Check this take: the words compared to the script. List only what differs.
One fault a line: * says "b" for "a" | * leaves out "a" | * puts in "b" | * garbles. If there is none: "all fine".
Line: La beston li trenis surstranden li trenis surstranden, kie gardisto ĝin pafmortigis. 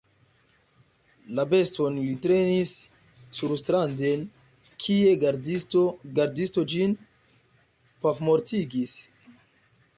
* leaves out "li trenis surstranden"